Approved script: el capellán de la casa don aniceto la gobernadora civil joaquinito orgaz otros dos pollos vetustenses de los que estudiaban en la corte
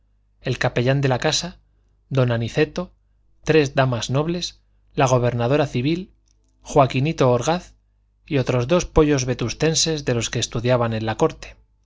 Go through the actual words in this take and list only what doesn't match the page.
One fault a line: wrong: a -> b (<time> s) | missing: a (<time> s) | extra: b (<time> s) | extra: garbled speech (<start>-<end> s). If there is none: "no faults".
extra: tres damas nobles (3.4 s)
extra: y (8.3 s)